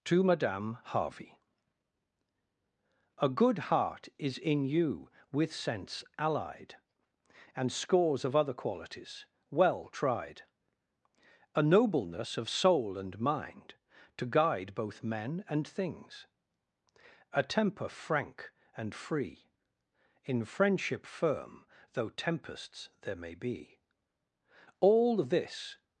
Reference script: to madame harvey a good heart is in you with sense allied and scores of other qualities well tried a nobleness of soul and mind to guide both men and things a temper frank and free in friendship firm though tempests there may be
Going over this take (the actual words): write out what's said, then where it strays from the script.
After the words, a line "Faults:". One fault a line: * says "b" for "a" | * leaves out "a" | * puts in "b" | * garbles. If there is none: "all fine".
to madame harvey a good heart is in you with sense allied and scores of other qualities well tried a nobleness of soul and mind to guide both men and things a temper frank and free in friendship firm though tempests there may be all this
Faults:
* puts in "all this"